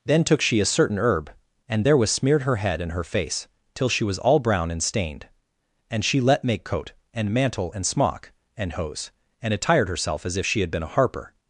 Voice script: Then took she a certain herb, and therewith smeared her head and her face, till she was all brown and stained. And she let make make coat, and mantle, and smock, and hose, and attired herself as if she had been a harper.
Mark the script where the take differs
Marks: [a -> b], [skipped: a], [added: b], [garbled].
Then took she a certain herb, and therewith smeared her head and her face, till she was all brown and stained. And she let make [skipped: make] coat, and mantle, and smock, and hose, and attired herself as if she had been a harper.